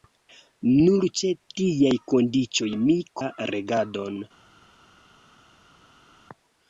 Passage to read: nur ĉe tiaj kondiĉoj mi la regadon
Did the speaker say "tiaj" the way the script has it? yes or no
yes